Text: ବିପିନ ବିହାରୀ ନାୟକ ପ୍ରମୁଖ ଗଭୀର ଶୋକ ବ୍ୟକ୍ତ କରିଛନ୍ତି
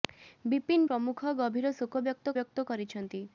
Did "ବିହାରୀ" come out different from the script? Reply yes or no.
yes